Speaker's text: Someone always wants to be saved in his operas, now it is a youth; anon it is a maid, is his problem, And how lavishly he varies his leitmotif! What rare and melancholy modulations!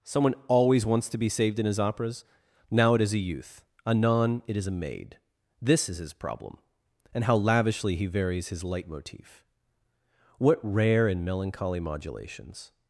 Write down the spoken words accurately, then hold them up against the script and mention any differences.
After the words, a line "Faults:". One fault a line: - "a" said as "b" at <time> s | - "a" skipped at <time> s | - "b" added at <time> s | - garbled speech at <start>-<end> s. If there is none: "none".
Someone always wants to be saved in his operas, now it is a youth; anon it is a maid, this is his problem, And how lavishly he varies his leitmotif! What rare and melancholy modulations!
Faults:
- "this" added at 5.6 s